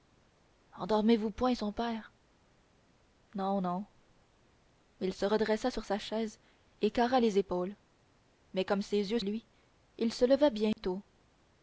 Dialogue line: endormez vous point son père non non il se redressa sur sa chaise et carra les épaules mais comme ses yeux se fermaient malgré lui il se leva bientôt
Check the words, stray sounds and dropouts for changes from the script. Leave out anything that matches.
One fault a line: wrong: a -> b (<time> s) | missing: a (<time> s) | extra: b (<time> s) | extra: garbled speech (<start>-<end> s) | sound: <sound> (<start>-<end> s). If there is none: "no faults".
missing: se fermaient malgré (9.2 s)
sound: dropout (10.7-10.8 s)